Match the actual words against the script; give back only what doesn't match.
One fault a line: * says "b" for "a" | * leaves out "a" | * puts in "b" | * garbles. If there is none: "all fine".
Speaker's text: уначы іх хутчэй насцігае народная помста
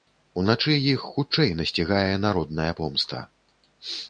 all fine